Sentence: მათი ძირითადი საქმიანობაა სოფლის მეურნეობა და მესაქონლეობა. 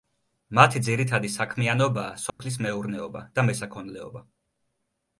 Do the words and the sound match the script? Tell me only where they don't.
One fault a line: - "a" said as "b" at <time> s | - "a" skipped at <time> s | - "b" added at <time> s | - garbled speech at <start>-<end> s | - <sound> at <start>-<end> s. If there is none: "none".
- dropout at 2.3-2.4 s